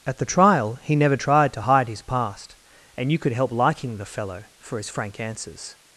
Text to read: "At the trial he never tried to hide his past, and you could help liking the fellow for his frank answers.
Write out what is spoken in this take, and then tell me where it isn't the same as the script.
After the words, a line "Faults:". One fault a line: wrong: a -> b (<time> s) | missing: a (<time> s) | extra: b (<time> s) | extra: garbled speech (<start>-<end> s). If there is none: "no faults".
"At the trial he never tried to hide his past, and you could help liking the fellow for his frank answers.
Faults:
no faults